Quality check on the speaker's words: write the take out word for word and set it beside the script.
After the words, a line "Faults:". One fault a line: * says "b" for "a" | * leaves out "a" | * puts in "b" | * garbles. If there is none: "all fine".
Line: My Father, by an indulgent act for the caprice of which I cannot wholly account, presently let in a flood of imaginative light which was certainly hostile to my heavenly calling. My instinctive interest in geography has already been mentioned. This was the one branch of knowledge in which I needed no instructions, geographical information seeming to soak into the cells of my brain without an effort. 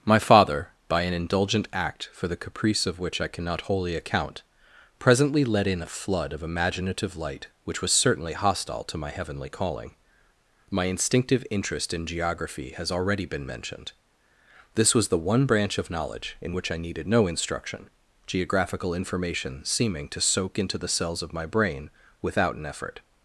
My Father, by an indulgent act for the caprice of which I cannot wholly account, presently let in a flood of imaginative light which was certainly hostile to my heavenly calling. My instinctive interest in geography has already been mentioned. This was the one branch of knowledge in which I needed no instruction, geographical information seeming to soak into the cells of my brain without an effort.
Faults:
* says "instruction" for "instructions"